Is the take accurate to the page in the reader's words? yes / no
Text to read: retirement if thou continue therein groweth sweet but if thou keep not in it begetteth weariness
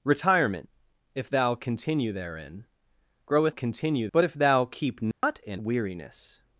no